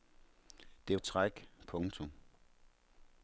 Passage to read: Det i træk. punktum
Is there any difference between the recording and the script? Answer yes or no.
no